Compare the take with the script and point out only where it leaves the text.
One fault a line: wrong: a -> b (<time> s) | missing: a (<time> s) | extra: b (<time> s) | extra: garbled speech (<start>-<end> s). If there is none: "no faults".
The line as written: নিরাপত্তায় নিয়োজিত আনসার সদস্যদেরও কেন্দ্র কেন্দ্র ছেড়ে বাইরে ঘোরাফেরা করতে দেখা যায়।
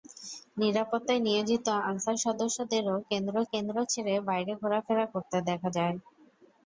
no faults